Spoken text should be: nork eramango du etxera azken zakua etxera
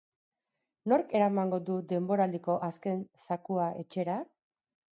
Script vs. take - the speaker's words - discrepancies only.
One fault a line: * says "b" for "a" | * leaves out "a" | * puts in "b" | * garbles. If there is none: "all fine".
* says "denboraldiko" for "etxera"